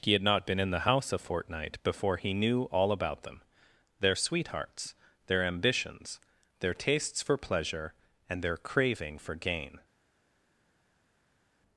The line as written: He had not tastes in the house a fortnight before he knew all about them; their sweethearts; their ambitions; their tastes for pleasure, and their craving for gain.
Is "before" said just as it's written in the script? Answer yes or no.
yes